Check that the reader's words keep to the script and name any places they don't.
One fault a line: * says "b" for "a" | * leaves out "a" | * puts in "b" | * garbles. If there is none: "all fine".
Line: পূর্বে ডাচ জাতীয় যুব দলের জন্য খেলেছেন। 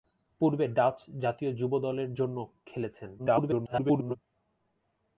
* garbles